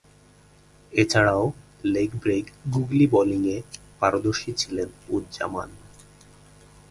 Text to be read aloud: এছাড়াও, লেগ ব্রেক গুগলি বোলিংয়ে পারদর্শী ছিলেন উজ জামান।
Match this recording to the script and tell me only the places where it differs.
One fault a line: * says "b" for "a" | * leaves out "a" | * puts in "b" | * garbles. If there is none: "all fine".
all fine